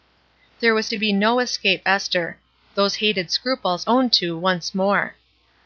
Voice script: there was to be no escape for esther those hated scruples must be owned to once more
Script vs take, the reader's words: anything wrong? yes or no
yes